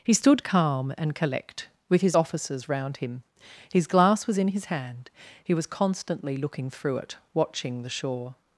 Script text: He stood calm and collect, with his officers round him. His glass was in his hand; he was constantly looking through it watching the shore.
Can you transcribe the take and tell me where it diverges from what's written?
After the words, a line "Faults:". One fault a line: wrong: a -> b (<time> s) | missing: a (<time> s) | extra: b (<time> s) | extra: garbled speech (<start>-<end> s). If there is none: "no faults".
He stood calm and collect, with his officers round him. His glass was in his hand; he was constantly looking through it watching the shore.
Faults:
no faults